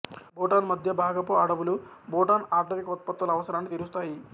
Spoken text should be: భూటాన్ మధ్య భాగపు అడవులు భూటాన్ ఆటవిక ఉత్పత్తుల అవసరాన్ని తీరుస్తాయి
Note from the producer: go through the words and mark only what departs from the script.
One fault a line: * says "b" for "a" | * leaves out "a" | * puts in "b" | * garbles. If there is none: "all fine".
all fine